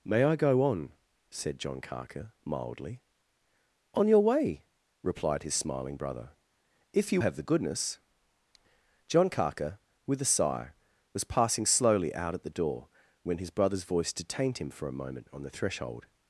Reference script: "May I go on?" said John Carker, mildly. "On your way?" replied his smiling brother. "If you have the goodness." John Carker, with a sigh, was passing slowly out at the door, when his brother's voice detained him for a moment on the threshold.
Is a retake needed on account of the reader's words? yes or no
no